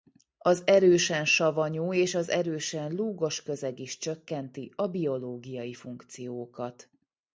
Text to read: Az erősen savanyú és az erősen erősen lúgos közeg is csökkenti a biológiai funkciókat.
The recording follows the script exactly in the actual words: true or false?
false